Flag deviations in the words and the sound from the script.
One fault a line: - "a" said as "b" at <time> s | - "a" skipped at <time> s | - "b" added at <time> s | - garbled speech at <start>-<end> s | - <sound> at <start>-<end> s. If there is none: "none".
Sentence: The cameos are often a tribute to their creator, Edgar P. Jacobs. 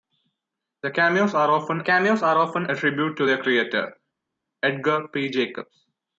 - "cameos are often" added at 1.8 s